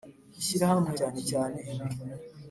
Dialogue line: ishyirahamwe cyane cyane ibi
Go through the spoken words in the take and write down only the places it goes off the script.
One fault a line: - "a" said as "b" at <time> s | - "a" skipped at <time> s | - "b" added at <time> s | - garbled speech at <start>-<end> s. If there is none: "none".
none